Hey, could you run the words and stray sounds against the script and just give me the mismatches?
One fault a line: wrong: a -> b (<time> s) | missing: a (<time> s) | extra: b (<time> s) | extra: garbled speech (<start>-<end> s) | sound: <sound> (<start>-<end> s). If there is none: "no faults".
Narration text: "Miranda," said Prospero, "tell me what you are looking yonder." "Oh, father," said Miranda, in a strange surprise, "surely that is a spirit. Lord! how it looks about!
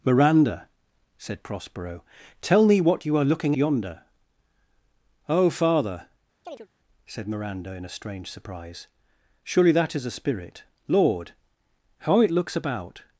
sound: chirp (6.4-6.7 s)